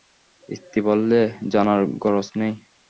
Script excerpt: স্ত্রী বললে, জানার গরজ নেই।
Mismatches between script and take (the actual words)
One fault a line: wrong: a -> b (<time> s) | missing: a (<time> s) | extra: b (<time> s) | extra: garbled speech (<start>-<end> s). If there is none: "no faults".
no faults